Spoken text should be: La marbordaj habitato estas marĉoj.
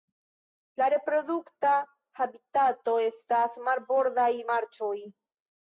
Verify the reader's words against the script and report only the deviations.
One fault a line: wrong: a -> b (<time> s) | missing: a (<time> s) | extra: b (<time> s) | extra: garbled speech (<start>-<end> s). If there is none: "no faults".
wrong: marbordaj -> reprodukta (0.9 s)
extra: marbordaj (3.7 s)